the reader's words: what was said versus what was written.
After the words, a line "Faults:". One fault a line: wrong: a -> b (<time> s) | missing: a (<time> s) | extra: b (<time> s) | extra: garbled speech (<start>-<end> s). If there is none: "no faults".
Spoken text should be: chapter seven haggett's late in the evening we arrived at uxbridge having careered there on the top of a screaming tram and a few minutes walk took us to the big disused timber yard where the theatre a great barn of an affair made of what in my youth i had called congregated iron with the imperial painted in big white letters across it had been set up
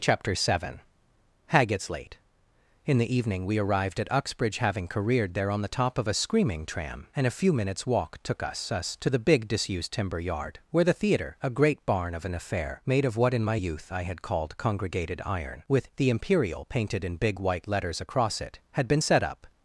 chapter seven haggett's late in the evening we arrived at uxbridge having careered there on the top of a screaming tram and a few minutes walk took us us to the big disused timber yard where the theatre a great barn of an affair made of what in my youth i had called congregated iron with the imperial painted in big white letters across it had been set up
Faults:
extra: us (8.7 s)